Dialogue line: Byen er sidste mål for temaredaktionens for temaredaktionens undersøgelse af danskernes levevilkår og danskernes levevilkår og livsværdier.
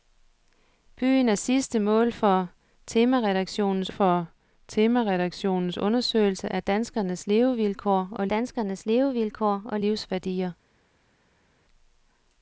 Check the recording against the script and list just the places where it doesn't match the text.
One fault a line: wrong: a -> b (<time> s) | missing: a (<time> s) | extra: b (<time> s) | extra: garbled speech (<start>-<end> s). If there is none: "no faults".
no faults